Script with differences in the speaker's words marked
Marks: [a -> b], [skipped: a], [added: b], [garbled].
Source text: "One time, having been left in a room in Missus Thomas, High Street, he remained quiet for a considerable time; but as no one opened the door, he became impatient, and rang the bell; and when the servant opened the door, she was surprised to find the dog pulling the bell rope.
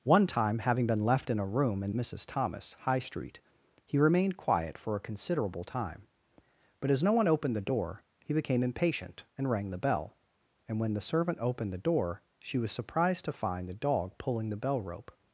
"One time, having been left in a room in Missus Thomas, High Street, he remained quiet for a considerable time; but as no one opened the door, he became impatient, and rang the bell; and when the servant opened the door, she was surprised to find the dog pulling the bell rope.